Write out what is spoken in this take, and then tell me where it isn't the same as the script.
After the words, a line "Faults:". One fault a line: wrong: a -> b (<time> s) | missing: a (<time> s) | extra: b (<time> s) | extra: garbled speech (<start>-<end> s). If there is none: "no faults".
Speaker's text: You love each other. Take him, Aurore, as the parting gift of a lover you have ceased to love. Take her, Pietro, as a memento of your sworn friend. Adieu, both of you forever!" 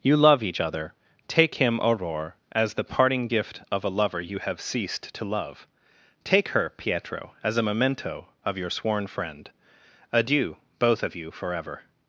You love each other. Take him, Aurore, as the parting gift of a lover you have ceased to love. Take her, Pietro, as a memento of your sworn friend. Adieu, both of you forever!"
Faults:
no faults